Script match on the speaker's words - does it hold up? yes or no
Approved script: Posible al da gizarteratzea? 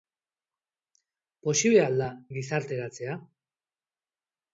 yes